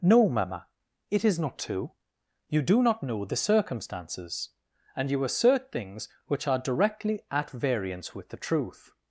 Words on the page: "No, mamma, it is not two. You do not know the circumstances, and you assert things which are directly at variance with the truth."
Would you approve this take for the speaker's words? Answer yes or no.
yes